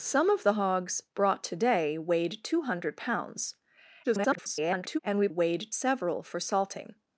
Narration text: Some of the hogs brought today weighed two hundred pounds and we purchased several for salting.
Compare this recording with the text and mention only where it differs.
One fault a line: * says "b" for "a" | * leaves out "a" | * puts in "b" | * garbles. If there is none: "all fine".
* garbles
* says "weighed" for "purchased"